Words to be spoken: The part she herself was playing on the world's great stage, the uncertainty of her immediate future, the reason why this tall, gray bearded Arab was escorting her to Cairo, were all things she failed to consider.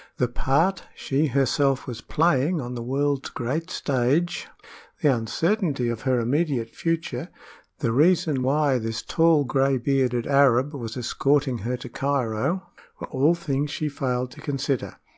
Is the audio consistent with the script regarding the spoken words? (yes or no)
yes